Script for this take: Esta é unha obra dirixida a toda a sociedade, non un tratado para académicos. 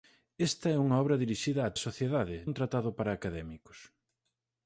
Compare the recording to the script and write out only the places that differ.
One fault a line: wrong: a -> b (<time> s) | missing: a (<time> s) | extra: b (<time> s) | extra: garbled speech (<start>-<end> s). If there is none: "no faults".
missing: toda (1.7 s)
missing: non (2.4 s)